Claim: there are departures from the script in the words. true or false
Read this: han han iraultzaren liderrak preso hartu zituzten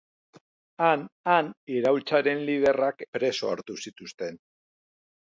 false